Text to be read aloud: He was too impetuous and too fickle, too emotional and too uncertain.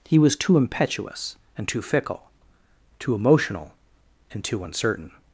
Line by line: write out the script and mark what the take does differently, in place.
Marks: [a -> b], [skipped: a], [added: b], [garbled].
He was too impetuous and too fickle, too emotional and too uncertain.